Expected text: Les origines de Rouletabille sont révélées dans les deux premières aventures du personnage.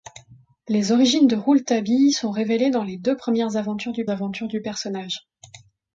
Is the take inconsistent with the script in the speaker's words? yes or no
yes